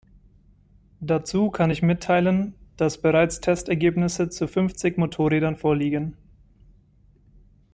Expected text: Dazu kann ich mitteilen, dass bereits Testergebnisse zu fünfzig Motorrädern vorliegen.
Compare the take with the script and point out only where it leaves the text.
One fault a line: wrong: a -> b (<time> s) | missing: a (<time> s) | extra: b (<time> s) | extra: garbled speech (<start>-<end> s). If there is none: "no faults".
no faults